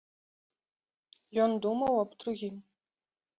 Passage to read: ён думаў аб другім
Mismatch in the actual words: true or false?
false